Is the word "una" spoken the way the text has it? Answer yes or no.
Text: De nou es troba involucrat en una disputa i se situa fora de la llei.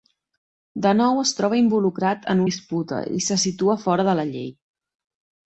no